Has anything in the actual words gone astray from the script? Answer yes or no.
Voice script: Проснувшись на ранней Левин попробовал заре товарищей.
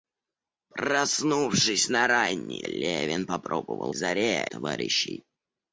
no